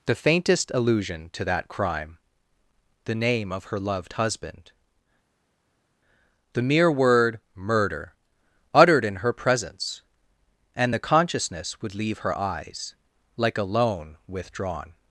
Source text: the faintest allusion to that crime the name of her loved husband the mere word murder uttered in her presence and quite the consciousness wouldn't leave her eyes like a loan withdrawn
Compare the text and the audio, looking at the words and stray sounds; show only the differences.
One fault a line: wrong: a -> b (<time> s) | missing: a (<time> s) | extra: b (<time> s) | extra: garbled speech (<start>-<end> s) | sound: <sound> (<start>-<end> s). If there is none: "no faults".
missing: quite (10.9 s)
wrong: wouldn't -> would (11.8 s)